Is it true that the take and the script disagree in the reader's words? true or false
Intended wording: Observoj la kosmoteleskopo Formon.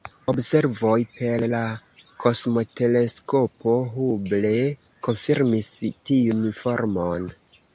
true